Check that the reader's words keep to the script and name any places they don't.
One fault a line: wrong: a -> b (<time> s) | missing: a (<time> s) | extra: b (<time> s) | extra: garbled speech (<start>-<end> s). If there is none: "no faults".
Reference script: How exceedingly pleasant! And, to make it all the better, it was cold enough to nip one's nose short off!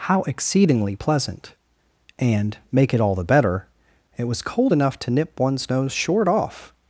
missing: to (2.6 s)